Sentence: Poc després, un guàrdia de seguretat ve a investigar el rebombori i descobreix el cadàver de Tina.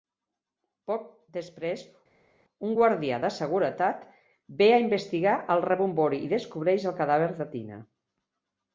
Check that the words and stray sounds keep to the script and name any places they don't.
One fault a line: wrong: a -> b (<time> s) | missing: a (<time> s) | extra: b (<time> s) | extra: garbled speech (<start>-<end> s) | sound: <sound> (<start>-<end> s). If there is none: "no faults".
no faults